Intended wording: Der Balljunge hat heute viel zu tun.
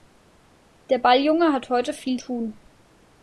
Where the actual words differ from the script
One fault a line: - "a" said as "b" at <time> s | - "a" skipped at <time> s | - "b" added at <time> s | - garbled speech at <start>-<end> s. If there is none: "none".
- "zu" skipped at 2.2 s